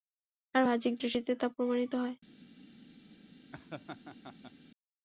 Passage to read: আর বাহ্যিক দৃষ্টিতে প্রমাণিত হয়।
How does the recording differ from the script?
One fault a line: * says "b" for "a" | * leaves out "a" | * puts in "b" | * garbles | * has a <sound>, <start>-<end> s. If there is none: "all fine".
* puts in "তা"
* has a laugh, 3.5-4.5 s